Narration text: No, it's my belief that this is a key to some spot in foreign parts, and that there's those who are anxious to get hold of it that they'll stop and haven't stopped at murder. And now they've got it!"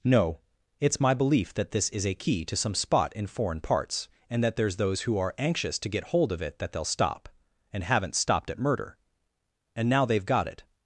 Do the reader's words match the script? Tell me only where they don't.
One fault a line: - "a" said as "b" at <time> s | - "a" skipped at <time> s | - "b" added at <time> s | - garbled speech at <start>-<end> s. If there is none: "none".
none